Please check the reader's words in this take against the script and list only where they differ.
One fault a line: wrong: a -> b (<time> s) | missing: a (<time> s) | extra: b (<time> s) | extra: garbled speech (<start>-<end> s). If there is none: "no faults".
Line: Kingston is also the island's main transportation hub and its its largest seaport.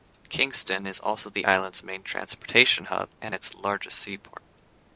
missing: its (3.5 s)